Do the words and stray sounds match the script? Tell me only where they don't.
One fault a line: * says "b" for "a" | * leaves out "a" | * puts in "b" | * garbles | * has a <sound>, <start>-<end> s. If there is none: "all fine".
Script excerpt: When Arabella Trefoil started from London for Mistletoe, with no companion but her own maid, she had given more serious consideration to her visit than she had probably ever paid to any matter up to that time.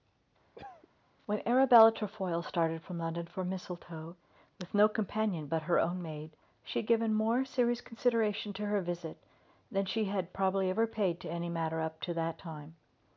* has a cough, 0.5-0.9 s